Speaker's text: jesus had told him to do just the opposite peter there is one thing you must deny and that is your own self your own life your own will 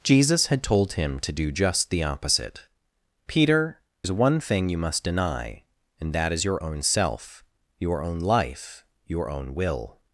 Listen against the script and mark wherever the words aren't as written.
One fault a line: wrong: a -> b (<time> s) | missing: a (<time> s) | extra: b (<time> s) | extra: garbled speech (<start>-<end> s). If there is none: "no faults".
missing: there (3.8 s)